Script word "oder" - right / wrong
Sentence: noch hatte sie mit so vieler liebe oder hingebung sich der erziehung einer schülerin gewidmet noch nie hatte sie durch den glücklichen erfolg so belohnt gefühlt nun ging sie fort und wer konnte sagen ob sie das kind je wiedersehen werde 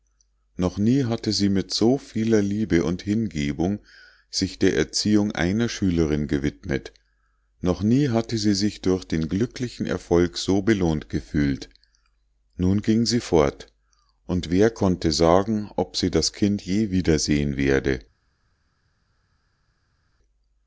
wrong